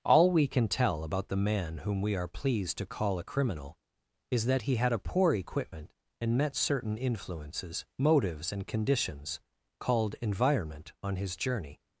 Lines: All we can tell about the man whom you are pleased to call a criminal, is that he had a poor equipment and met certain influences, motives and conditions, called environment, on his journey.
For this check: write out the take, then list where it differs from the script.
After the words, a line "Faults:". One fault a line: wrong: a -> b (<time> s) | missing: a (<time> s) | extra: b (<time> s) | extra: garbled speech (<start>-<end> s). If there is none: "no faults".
All we can tell about the man whom we are pleased to call a criminal, is that he had a poor equipment and met certain influences, motives and conditions, called environment, on his journey.
Faults:
wrong: you -> we (2.0 s)